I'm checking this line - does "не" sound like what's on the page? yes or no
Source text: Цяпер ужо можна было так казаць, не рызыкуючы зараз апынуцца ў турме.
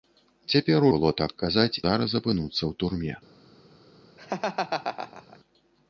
no